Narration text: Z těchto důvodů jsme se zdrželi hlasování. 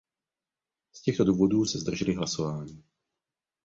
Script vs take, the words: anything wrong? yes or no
yes